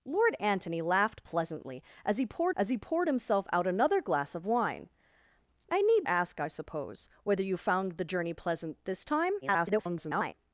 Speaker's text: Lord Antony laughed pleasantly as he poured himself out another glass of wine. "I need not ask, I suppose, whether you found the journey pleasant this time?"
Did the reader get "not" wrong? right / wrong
wrong